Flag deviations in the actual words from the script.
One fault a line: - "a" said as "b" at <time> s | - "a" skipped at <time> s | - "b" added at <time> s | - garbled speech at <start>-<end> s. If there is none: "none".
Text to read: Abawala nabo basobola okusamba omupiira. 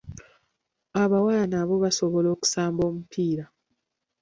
none